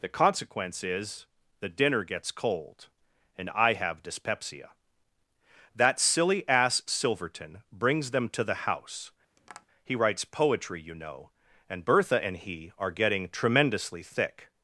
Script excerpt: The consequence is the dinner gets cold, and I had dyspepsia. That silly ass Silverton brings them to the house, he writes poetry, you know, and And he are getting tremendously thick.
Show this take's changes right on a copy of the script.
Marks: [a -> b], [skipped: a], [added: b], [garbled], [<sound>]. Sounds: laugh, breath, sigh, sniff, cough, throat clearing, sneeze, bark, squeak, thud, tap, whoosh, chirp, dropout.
The consequence is the dinner gets cold, and I [had -> have] dyspepsia. That silly ass Silverton brings them to the house, [tap] he writes poetry, you know, and [added: Bertha] And he are getting tremendously thick.